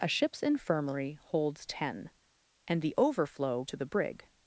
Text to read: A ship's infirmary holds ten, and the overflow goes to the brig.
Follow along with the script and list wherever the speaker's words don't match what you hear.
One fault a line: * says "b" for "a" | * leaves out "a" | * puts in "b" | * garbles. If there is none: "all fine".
* leaves out "goes"